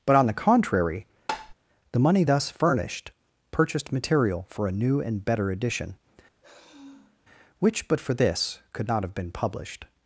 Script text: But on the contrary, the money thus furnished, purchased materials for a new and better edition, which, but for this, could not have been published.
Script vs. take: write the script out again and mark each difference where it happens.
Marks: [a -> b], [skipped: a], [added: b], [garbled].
But on the contrary, the money thus furnished, purchased [materials -> material] for a new and better edition, which, but for this, could not have been published.